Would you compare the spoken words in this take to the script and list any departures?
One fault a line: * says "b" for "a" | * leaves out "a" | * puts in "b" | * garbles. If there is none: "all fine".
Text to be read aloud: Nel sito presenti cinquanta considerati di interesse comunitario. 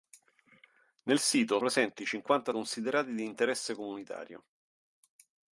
all fine